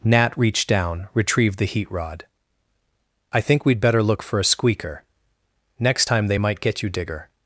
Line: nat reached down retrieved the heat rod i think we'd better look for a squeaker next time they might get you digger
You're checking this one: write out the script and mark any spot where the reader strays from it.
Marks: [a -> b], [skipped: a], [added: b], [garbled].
nat reached down retrieved the heat rod i think we'd better look for a squeaker next time they might get you digger